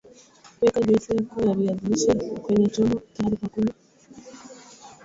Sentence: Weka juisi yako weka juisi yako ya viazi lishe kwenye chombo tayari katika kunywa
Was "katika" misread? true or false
true